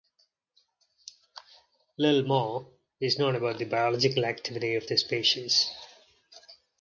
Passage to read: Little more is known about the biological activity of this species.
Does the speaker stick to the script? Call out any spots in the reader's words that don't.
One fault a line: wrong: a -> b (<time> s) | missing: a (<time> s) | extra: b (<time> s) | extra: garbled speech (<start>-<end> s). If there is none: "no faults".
no faults